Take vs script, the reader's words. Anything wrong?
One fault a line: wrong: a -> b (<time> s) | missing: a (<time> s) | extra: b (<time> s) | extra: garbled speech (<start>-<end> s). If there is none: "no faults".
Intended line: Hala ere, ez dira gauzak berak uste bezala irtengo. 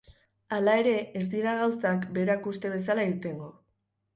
no faults